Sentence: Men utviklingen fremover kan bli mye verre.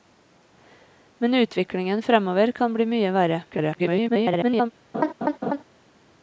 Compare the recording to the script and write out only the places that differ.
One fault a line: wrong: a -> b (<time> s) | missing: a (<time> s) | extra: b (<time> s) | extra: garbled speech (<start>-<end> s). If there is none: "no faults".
extra: garbled speech (3.5-4.7 s)